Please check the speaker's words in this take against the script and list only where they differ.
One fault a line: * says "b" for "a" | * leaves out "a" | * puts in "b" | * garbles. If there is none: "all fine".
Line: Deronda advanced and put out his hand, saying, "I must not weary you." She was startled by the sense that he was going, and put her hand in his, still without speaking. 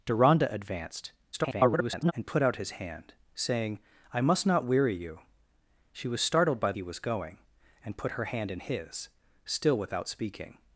* garbles
* leaves out "the sense that"